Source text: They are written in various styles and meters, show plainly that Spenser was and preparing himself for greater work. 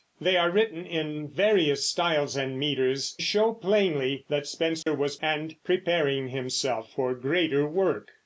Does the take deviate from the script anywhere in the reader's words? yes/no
no